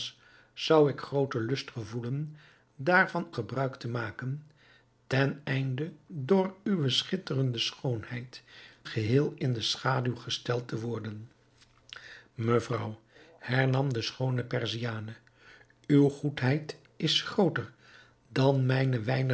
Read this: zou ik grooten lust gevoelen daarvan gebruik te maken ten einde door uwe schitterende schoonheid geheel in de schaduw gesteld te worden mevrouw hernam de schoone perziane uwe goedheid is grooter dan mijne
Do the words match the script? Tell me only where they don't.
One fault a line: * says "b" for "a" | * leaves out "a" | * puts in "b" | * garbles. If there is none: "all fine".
all fine